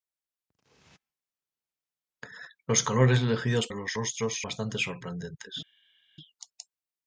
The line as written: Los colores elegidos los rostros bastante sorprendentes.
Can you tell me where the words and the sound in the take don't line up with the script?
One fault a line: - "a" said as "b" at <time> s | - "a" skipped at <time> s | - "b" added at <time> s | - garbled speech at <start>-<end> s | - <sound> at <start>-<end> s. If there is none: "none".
none